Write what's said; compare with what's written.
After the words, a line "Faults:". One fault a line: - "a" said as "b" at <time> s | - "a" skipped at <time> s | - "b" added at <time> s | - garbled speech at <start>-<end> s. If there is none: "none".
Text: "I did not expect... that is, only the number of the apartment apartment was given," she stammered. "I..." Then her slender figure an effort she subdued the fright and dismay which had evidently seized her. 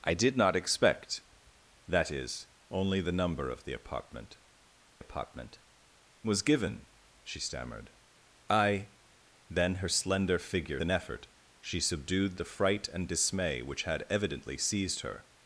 "I did not expect... that is, only the number of the apartment apartment was given," she stammered. "I..." Then her slender figure an effort she subdued the fright and dismay which had evidently seized her.
Faults:
none